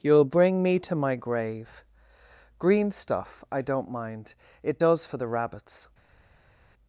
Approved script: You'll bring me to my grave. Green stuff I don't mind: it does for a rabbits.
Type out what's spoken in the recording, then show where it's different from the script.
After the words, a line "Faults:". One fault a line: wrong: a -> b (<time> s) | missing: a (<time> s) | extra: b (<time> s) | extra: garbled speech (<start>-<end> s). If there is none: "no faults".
You'll bring me to my grave. Green stuff I don't mind: it does for the rabbits.
Faults:
wrong: a -> the (5.1 s)